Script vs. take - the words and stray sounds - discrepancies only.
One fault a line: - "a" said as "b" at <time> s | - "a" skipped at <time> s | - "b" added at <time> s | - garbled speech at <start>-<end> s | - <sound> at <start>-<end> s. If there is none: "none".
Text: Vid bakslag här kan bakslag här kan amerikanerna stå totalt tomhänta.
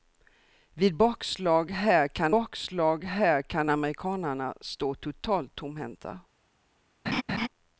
- laugh at 7.1-7.5 s